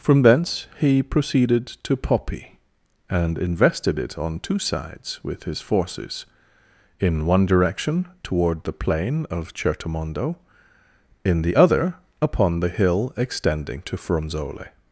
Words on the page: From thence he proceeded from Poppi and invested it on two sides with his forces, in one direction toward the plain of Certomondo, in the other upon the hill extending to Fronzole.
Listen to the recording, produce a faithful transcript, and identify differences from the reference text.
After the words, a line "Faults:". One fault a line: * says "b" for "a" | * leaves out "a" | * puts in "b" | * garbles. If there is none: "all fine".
From thence he proceeded to Poppi and invested it on two sides with his forces, in one direction toward the plain of Certomondo, in the other upon the hill extending to Fronzole.
Faults:
* says "to" for "from"